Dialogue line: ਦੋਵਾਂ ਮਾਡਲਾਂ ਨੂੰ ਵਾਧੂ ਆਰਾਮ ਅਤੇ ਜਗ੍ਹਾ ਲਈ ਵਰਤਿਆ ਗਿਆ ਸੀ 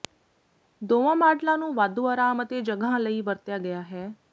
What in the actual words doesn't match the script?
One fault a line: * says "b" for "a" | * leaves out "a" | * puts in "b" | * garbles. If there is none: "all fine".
* says "ਹੈ" for "ਸੀ"